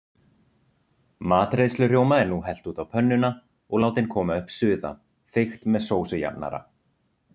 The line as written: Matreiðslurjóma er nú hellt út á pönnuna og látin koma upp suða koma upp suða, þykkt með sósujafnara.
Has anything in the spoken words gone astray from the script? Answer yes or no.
yes